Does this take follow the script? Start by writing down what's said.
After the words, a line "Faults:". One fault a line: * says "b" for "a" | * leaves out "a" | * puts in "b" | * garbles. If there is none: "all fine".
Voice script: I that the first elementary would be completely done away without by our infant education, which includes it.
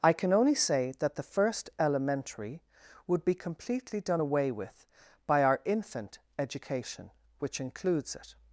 I can only say that the first elementary would be completely done away with by our infant education, which includes it.
Faults:
* puts in "can only say"
* says "with" for "without"